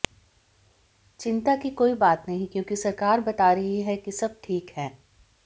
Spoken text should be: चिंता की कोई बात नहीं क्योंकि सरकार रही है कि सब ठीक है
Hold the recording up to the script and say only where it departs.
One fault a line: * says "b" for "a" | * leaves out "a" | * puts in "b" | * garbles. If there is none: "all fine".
* puts in "बता"